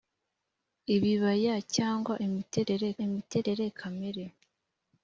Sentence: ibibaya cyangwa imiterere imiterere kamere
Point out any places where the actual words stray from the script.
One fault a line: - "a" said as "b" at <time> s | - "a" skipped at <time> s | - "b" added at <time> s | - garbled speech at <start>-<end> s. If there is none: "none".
none